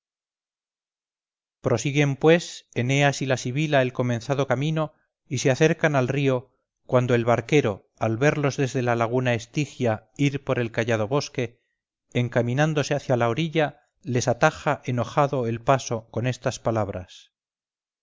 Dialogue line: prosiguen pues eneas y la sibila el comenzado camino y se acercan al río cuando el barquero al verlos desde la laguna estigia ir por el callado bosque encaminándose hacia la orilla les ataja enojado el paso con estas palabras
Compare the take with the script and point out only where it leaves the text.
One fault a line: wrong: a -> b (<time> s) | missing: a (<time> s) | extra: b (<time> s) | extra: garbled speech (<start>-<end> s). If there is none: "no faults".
no faults